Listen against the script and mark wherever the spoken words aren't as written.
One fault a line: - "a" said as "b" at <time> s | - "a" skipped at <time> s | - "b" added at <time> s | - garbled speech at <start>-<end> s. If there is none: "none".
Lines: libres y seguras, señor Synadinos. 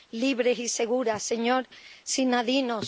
none